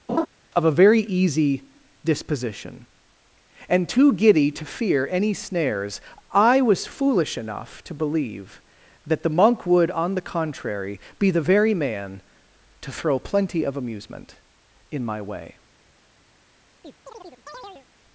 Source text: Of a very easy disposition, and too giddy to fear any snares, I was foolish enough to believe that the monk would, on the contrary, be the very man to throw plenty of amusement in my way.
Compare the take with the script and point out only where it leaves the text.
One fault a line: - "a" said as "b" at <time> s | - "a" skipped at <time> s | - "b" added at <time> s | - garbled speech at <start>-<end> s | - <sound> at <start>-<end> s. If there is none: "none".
- laugh at 0.1-0.3 s
- chirp at 16.8-17.9 s